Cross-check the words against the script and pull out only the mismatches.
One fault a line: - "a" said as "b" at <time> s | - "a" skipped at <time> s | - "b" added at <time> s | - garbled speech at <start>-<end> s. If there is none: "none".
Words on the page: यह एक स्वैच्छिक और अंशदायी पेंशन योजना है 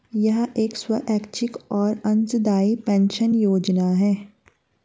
none